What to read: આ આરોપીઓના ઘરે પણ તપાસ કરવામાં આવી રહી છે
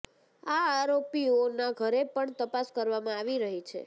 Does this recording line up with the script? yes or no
yes